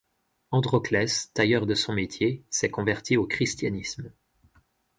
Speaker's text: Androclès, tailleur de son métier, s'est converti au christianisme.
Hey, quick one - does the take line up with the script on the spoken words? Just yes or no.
yes